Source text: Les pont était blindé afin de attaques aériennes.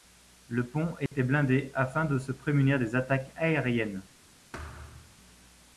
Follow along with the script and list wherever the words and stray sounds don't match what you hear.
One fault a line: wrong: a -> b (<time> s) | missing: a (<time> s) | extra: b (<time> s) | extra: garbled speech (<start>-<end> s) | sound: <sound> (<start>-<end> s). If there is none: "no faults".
wrong: Les -> Le (0.5 s)
sound: dropout (1.1-1.1 s)
extra: se prémunir des (2.2 s)
sound: thud (4.5-5.2 s)